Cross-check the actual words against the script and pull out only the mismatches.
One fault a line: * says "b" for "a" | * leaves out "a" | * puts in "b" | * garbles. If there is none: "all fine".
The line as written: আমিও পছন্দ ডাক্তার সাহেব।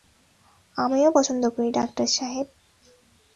* puts in "করি"